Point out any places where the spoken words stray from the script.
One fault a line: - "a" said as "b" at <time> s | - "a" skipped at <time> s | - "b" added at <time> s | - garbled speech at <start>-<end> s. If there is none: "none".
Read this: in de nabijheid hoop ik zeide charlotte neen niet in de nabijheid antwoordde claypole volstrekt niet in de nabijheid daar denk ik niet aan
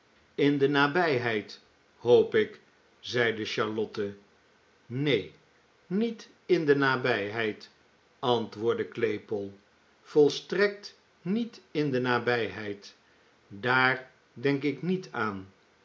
none